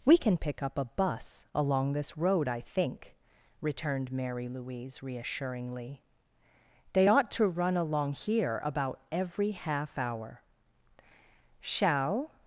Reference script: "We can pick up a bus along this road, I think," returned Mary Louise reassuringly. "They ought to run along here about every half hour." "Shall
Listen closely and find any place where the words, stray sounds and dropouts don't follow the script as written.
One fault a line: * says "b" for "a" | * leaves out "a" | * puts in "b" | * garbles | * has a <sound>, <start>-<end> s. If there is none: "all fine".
all fine